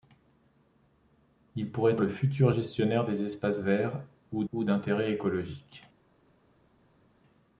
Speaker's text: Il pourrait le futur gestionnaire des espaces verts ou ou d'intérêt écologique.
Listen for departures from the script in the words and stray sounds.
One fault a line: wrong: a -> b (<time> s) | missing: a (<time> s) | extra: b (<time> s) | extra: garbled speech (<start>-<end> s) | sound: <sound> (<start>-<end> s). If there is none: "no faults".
no faults